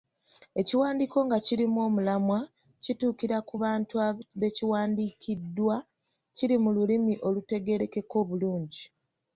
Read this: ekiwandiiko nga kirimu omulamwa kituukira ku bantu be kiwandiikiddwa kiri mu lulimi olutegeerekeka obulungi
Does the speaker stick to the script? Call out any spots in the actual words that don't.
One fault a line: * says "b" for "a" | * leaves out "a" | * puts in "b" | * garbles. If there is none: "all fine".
all fine